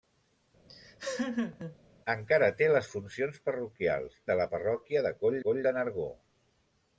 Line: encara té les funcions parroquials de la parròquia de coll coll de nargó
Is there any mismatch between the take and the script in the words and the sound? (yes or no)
yes